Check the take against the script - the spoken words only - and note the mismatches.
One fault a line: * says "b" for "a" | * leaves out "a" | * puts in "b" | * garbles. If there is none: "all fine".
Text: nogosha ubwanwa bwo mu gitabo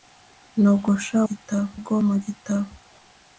* says "gitabo" for "ubwanwa"